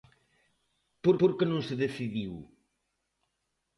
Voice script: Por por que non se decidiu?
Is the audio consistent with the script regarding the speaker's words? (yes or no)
yes